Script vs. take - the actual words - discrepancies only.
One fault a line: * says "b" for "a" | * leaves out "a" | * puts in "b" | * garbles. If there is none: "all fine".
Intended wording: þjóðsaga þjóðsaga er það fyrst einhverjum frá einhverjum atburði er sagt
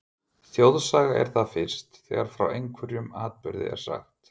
* leaves out "þjóðsaga"
* says "þegar" for "einhverjum"